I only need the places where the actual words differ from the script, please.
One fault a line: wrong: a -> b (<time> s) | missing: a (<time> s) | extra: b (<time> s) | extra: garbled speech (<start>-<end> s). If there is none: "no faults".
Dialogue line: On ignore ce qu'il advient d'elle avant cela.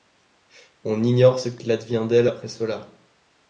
wrong: avant -> après (2.2 s)